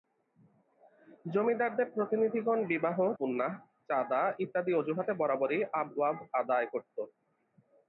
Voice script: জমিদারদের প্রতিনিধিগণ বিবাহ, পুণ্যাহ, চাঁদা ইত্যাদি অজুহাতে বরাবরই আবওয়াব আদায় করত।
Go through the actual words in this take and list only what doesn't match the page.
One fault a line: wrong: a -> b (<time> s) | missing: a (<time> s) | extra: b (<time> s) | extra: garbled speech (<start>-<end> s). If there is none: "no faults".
no faults